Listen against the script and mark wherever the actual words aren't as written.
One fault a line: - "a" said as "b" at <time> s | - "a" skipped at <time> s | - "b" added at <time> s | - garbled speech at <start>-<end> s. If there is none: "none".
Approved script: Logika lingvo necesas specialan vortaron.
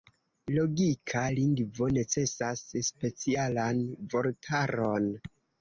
none